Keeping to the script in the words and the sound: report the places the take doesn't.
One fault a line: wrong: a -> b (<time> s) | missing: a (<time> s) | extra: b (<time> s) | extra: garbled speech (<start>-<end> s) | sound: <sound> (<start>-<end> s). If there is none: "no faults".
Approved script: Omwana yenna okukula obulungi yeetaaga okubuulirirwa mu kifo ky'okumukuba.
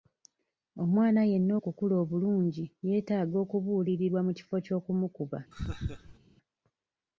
sound: laugh (5.5-6.2 s)